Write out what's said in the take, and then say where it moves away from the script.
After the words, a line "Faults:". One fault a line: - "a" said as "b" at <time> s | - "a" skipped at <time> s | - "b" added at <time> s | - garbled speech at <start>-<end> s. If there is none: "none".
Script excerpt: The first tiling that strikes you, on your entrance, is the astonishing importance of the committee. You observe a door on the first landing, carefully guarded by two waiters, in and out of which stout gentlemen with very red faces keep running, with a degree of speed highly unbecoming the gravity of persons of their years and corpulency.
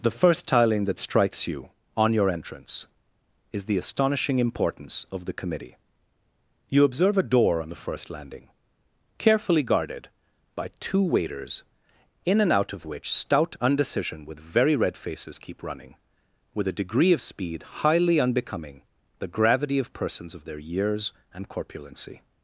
The first tiling that strikes you, on your entrance, is the astonishing importance of the committee. You observe a door on the first landing, carefully guarded by two waiters, in and out of which stout undecision with very red faces keep running, with a degree of speed highly unbecoming the gravity of persons of their years and corpulency.
Faults:
- "gentlemen" said as "undecision" at 13.6 s